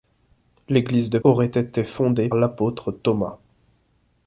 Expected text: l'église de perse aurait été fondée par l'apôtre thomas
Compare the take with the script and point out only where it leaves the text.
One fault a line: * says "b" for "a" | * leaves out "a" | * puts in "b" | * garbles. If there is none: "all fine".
* leaves out "perse"
* leaves out "par"